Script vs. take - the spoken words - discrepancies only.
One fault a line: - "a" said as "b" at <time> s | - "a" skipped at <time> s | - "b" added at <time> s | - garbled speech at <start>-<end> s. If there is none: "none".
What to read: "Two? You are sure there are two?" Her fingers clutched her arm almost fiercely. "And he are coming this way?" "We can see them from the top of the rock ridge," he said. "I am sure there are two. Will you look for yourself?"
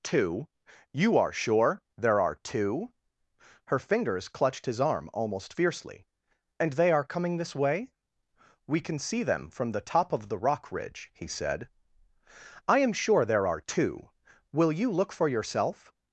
- "her" said as "his" at 4.7 s
- "he" said as "they" at 6.7 s